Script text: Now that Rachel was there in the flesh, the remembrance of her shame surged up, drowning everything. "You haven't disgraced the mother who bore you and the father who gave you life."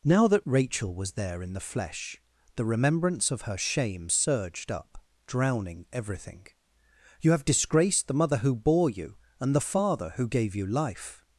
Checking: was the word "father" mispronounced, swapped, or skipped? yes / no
no